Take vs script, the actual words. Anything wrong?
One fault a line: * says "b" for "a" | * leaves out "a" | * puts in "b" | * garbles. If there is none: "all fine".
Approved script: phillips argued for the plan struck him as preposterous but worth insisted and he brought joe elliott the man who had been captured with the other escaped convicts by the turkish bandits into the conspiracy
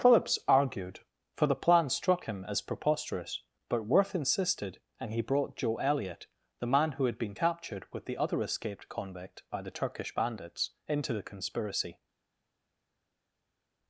* says "convict" for "convicts"